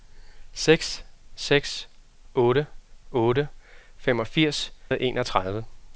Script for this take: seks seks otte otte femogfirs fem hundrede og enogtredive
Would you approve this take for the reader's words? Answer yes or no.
no